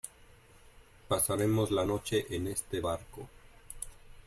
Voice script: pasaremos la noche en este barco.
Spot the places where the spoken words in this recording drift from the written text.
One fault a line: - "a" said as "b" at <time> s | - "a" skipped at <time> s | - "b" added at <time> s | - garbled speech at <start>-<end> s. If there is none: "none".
none